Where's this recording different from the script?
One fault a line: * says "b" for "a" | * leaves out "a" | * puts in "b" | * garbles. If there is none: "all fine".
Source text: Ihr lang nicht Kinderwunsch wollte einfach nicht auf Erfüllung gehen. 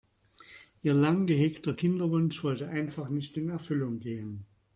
* says "gehegter" for "nicht"
* says "in" for "auf"